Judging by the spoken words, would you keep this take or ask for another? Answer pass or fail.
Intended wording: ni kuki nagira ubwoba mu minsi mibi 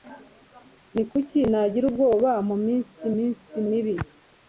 fail